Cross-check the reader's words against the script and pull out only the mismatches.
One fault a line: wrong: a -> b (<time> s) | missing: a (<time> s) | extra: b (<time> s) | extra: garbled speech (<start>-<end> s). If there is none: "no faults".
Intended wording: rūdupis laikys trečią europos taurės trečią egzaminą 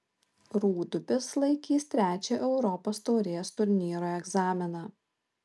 wrong: trečią -> turnyro (3.6 s)